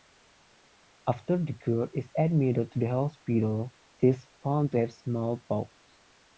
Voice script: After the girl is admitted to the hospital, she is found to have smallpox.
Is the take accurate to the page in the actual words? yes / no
yes